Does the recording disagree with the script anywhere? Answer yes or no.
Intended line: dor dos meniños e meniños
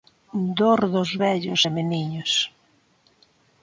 yes